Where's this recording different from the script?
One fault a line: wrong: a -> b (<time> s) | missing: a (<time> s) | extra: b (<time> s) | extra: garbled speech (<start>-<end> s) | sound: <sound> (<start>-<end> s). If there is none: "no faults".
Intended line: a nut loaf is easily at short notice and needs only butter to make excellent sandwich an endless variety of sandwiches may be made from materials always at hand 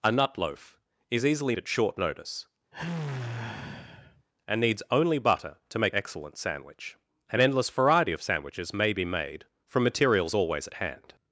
sound: sigh (2.7-4.3 s)